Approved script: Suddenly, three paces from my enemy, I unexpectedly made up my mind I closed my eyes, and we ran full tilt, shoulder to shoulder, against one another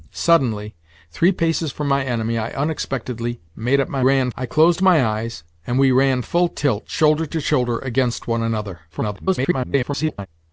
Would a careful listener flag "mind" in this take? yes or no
yes